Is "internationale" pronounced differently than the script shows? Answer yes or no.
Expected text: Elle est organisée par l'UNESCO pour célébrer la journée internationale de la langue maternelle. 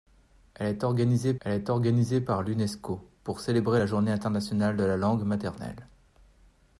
no